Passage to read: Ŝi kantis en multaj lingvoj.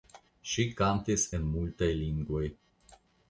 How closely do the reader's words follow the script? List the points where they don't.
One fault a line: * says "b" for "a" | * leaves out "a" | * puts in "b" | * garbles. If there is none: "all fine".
all fine